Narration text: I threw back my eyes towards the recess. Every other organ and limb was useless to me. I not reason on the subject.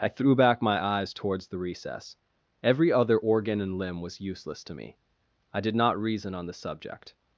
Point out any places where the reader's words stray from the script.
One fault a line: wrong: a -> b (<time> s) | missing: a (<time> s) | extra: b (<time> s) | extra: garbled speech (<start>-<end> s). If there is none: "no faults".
extra: did (5.6 s)